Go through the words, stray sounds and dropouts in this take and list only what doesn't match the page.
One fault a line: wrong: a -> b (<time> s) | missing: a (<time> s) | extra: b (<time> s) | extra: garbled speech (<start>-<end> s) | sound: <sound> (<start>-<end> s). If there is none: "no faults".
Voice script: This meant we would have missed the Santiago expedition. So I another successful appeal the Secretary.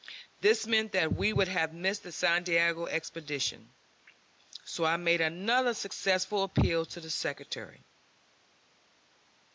extra: that (0.9 s)
extra: made (5.0 s)
extra: to (6.8 s)